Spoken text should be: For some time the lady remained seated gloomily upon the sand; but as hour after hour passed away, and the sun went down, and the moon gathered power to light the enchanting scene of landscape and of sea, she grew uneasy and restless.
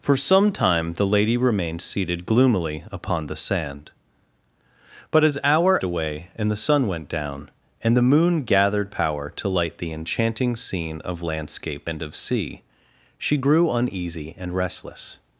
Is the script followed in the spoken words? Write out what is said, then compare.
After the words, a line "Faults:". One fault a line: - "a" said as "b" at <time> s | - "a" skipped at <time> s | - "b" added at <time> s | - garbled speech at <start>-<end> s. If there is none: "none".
For some time the lady remained seated gloomily upon the sand; but as hour away, and the sun went down, and the moon gathered power to light the enchanting scene of landscape and of sea, she grew uneasy and restless.
Faults:
- "after hour passed" skipped at 5.8 s